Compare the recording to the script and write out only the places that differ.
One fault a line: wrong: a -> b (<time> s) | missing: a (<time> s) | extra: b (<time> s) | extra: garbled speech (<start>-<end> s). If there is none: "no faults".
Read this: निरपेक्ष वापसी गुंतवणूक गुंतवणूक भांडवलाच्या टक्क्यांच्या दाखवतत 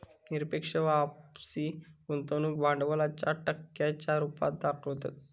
missing: गुंतवणूक (2.6 s)
extra: रुपात (4.2 s)